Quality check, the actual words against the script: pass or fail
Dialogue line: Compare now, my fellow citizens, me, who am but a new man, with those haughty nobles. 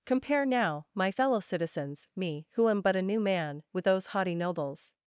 pass